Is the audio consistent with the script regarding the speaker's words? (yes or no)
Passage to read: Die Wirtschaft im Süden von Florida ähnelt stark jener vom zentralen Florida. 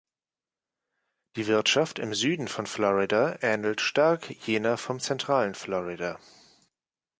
yes